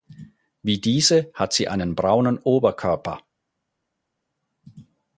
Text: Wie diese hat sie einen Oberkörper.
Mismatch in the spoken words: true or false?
true